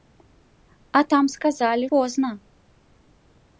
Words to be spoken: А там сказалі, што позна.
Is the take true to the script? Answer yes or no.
no